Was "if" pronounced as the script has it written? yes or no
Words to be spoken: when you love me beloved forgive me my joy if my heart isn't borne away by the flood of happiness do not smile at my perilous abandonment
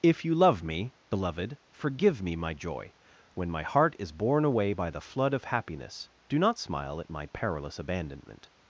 no